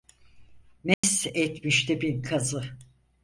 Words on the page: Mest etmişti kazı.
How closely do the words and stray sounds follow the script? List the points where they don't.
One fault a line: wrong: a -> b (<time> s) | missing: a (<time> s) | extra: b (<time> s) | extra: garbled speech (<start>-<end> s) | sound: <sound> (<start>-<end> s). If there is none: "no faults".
sound: dropout (0.9-1.0 s)
extra: bin (2.0 s)